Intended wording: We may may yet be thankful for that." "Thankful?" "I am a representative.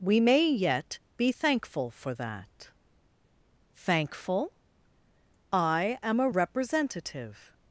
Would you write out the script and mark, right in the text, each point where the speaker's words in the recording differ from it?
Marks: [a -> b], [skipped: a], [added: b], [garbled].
We may [skipped: may] yet be thankful for that." "Thankful?" "I am a representative.